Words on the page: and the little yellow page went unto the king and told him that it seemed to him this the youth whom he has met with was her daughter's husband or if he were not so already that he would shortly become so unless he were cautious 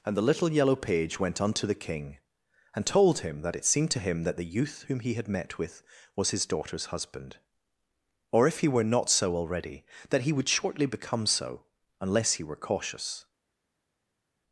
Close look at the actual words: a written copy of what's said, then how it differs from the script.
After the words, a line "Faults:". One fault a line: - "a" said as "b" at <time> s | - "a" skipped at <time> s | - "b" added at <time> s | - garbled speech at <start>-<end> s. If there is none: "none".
and the little yellow page went unto the king and told him that it seemed to him that the youth whom he had met with was his daughter's husband or if he were not so already that he would shortly become so unless he were cautious
Faults:
- "this" said as "that" at 4.2 s
- "has" said as "had" at 5.1 s
- "her" said as "his" at 6.3 s